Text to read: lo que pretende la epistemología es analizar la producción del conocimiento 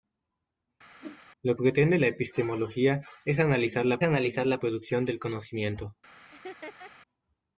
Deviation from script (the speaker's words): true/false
true